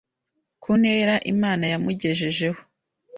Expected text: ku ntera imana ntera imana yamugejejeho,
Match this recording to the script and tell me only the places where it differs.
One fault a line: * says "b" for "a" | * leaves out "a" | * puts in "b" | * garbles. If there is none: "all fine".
* leaves out "ntera imana"